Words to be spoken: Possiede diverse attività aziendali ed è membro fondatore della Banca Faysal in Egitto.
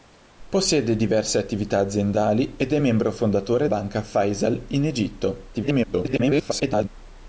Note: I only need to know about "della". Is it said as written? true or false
false